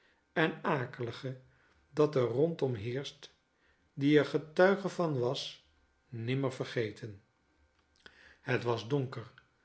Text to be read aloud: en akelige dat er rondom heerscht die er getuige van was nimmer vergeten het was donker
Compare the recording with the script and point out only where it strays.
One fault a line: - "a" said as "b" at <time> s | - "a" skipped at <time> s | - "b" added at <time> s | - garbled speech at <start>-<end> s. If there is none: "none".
none